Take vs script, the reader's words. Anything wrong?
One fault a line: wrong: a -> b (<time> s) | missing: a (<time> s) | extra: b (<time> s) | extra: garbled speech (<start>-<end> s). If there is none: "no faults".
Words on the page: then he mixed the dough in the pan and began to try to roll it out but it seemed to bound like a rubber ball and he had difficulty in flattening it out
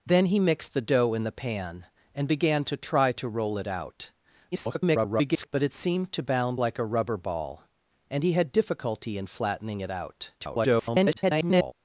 extra: garbled speech (4.5-5.5 s)
extra: garbled speech (10.4-11.7 s)